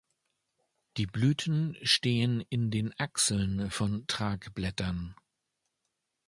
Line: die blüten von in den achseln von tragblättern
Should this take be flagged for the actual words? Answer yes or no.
yes